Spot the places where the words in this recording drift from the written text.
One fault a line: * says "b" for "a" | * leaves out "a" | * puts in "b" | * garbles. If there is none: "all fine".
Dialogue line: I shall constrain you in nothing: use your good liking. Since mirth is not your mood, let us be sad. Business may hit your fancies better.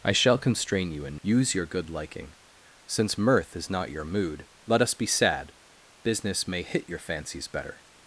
* leaves out "nothing"